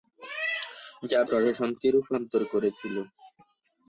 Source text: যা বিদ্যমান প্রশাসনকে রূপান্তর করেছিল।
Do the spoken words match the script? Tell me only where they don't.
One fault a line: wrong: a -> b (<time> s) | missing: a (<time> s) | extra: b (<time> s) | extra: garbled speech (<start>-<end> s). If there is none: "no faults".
missing: বিদ্যমান (1.2 s)